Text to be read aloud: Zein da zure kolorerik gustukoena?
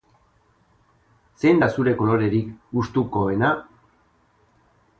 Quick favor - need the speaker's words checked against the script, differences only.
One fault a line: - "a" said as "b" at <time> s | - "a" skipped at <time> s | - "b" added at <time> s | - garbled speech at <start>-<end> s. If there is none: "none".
none